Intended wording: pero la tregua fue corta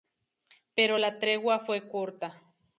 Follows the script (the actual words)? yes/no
yes